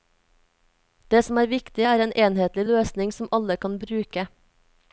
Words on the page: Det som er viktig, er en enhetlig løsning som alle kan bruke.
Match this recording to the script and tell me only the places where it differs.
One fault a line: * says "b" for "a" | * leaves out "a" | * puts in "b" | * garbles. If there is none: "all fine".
all fine